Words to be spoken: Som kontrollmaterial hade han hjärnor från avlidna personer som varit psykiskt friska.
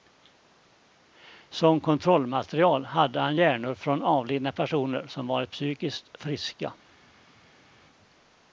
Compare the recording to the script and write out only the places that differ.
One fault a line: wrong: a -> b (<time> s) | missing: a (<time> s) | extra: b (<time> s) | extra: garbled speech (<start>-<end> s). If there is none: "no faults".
no faults